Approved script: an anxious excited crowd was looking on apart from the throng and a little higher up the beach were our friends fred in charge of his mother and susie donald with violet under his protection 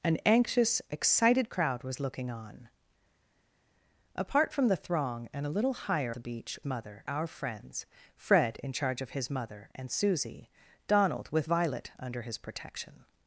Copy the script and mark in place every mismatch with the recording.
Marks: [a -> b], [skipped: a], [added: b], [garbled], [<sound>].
an anxious excited crowd was looking on apart from the throng and a little higher [skipped: up] the beach [were -> mother] our friends fred in charge of his mother and susie donald with violet under his protection